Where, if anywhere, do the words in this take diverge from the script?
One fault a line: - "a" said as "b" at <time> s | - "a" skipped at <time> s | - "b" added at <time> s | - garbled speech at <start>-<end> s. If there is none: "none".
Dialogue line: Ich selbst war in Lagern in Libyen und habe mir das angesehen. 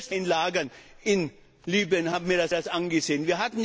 - "war" skipped at 0.1 s
- "das" added at 2.5 s